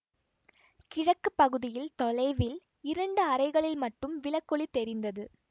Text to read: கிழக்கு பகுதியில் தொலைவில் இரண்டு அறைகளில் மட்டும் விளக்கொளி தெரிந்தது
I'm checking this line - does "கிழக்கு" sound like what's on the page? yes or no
yes